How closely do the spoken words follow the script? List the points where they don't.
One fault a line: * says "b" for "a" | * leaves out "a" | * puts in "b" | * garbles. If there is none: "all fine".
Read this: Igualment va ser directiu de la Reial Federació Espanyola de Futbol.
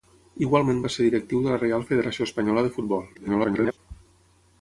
* garbles